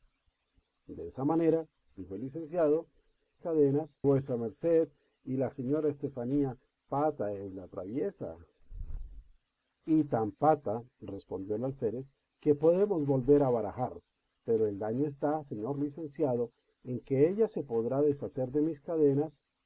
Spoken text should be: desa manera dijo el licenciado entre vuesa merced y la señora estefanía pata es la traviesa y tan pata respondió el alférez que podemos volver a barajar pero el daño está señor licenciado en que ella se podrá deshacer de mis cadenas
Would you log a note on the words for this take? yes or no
yes